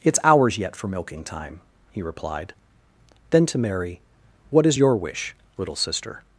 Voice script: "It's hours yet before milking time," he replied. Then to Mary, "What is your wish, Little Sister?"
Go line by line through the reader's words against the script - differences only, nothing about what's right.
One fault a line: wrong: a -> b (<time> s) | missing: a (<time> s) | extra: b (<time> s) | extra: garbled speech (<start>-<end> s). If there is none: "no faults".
wrong: before -> for (0.8 s)